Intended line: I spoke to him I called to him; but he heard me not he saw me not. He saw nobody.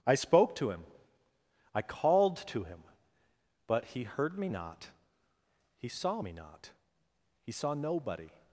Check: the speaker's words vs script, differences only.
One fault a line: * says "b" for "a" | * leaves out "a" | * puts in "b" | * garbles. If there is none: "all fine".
all fine